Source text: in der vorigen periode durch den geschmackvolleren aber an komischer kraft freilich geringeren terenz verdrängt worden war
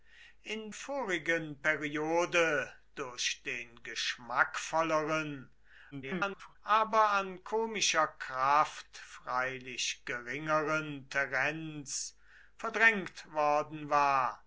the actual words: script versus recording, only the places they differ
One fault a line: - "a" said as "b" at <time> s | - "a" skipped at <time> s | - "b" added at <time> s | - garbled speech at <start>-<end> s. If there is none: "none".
- "der" skipped at 0.7 s
- garbled speech at 5.9-6.6 s